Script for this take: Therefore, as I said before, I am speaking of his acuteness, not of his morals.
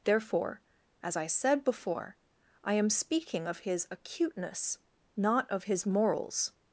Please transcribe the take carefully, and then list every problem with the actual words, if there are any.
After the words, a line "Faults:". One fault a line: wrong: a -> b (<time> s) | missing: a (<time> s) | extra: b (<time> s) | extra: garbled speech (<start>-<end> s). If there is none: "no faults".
Therefore, as I said before, I am speaking of his acuteness, not of his morals.
Faults:
no faults